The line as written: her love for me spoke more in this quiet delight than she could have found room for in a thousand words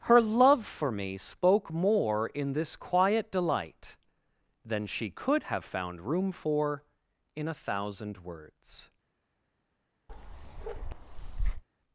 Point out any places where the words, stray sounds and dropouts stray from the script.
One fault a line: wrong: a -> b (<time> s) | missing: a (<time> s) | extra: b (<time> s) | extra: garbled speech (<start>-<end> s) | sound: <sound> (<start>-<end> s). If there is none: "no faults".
sound: bark (10.1-11.6 s)